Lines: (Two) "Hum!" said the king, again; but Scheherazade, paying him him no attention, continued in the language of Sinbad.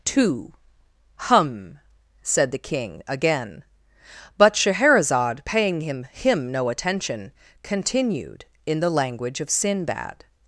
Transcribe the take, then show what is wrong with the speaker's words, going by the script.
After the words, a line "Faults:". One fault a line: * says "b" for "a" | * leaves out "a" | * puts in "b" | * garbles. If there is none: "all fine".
(Two) "Hum!" said the king, again; but Scheherazade, paying him him no attention, continued in the language of Sinbad.
Faults:
all fine